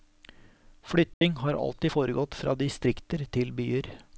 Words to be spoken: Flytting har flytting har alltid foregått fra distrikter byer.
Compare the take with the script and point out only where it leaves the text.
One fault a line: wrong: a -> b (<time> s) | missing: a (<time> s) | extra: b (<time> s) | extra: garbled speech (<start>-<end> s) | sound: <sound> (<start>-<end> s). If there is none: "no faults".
sound: dropout (1.1-1.2 s)
missing: flytting har (1.5 s)
extra: til (3.3 s)